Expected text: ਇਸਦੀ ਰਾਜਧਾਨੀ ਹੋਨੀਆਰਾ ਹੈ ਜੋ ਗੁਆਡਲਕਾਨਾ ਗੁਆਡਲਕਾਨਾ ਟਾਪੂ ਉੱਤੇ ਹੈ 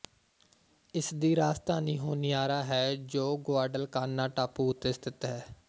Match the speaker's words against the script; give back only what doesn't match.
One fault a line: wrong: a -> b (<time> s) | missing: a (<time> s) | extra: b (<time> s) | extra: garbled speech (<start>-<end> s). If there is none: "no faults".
missing: ਗੁਆਡਲਕਾਨਾ (4.3 s)
extra: ਸਥਿਤ (4.9 s)